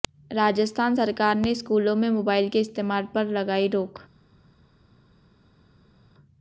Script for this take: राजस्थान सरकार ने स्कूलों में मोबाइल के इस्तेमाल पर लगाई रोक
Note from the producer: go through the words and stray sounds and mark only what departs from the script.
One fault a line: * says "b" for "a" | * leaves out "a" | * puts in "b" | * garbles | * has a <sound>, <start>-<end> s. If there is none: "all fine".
all fine